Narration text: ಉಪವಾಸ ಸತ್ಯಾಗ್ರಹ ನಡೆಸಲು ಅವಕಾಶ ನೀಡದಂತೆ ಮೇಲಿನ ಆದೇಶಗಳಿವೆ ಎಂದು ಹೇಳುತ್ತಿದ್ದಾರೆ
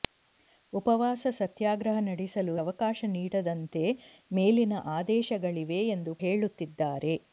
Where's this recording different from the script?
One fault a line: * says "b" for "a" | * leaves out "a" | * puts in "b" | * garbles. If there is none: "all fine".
all fine